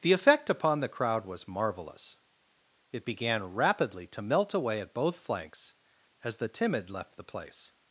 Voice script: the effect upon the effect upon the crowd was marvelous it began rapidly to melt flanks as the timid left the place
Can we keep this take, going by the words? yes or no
no